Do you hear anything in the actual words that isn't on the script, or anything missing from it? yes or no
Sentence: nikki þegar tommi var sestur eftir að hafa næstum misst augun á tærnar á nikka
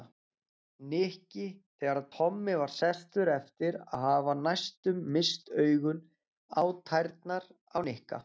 no